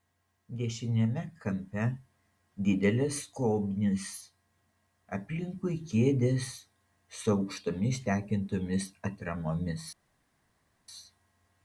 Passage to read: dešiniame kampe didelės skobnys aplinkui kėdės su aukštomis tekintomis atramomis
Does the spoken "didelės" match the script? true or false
true